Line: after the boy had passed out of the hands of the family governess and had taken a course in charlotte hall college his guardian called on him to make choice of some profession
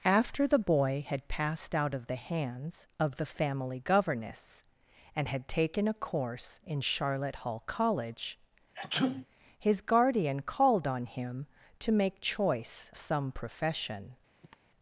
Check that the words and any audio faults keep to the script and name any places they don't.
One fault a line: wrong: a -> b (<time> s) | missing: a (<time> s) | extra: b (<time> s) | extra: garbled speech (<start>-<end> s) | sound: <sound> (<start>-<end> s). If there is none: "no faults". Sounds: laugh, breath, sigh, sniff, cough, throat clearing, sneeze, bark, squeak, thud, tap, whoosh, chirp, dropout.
sound: sneeze (8.7-9.3 s)
missing: of (12.9 s)
sound: cough (14.4-14.6 s)